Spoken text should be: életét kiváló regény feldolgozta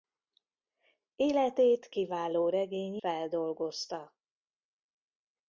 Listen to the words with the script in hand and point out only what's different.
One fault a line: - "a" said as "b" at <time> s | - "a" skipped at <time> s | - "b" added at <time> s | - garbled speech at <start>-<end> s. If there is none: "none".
none